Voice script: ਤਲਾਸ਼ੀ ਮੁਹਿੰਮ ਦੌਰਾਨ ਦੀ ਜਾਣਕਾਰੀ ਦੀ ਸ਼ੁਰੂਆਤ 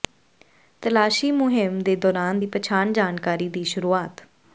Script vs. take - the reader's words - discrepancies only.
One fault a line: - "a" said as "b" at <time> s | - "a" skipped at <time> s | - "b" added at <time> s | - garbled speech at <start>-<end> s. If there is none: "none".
- "ਦੇ" added at 1.8 s
- "ਪਛਾਣ" added at 2.5 s